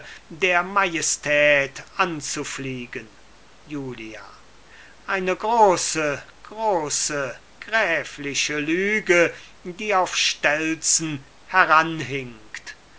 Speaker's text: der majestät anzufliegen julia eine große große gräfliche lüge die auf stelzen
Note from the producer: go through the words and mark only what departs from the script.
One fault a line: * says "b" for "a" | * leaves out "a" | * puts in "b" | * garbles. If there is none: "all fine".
all fine